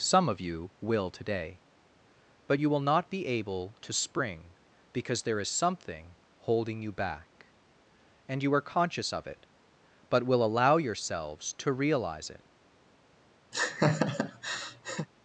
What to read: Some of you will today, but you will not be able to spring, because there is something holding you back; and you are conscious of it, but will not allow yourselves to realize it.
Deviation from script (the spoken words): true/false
true